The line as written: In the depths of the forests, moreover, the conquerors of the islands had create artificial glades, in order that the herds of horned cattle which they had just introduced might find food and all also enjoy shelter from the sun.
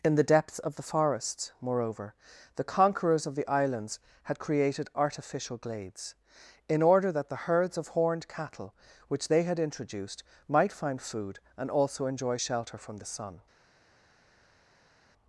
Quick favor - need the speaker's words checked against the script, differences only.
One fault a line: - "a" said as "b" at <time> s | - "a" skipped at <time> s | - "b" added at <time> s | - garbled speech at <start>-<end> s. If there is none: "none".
- "create" said as "created" at 4.4 s
- "just" skipped at 9.6 s
- "all" skipped at 11.7 s